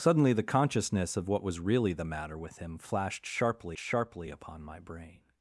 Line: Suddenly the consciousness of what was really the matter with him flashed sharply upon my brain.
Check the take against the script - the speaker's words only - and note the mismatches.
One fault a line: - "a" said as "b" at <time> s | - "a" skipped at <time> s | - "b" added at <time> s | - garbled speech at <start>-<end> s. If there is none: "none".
- "sharply" added at 3.8 s